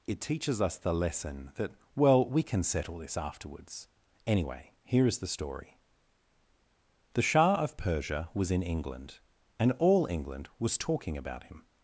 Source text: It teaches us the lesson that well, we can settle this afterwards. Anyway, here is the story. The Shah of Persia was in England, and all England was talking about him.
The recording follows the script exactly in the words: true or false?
true